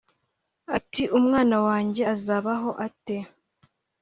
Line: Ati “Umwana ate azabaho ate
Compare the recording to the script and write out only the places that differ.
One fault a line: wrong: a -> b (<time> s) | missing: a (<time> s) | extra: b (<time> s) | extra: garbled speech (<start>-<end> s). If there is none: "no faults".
wrong: ate -> wanjye (1.7 s)